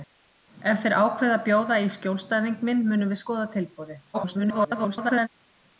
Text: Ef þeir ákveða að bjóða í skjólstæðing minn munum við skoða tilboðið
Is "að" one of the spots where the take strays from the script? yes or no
no